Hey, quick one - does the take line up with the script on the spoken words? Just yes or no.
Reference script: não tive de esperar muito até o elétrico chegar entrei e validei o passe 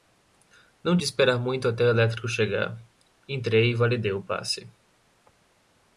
no